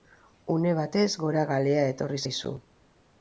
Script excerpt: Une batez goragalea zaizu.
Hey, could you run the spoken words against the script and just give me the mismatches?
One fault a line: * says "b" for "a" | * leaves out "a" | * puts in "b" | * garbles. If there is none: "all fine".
* puts in "etorri"